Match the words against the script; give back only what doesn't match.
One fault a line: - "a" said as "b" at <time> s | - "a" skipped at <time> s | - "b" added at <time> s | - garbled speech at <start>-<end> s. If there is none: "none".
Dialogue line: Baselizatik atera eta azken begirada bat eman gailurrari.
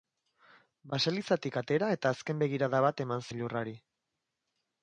none